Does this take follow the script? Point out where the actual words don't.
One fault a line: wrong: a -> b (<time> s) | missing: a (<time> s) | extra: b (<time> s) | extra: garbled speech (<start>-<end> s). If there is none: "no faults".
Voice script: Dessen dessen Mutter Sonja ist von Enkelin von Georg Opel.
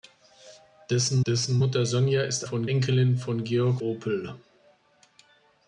no faults